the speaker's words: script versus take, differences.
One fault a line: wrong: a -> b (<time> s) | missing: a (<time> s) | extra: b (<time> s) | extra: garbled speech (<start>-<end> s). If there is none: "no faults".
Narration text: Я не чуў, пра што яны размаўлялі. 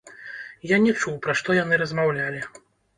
no faults